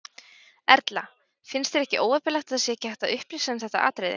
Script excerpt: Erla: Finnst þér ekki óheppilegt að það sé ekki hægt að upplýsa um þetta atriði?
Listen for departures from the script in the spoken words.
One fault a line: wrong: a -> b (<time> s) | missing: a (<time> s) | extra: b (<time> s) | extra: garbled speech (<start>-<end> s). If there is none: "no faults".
no faults